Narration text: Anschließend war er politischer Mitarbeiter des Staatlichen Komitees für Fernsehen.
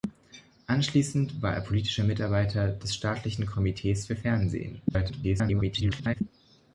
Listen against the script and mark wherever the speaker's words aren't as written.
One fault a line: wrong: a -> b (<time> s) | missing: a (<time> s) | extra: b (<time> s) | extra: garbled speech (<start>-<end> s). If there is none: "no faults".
extra: garbled speech (4.9-6.2 s)